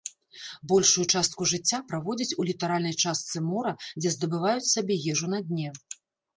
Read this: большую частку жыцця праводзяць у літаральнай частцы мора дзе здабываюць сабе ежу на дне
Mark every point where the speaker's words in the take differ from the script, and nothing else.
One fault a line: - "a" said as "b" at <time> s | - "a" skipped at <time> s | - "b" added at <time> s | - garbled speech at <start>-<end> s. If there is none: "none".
none